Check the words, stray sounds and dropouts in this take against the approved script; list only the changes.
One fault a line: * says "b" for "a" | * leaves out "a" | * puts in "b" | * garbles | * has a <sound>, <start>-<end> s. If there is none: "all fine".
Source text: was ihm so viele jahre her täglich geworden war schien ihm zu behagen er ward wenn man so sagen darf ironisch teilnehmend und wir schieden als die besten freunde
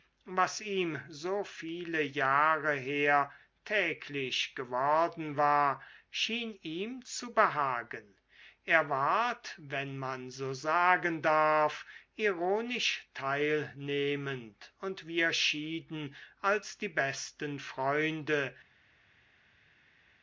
all fine